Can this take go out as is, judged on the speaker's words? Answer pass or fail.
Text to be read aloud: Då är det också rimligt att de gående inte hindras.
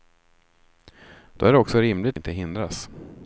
fail